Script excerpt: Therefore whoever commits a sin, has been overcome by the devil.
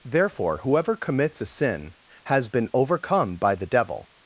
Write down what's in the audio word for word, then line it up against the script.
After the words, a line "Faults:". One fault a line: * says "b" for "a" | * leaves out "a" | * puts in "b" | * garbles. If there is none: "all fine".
Therefore whoever commits a sin, has been overcome by the devil.
Faults:
all fine